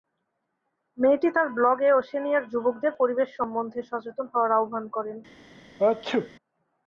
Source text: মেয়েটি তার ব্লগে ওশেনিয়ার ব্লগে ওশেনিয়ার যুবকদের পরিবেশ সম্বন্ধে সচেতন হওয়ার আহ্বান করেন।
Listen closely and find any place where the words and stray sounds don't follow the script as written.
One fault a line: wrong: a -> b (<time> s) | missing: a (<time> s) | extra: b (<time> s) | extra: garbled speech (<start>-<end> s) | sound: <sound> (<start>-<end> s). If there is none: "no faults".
missing: ব্লগে ওশেনিয়ার (2.4 s)
sound: sneeze (5.8-6.3 s)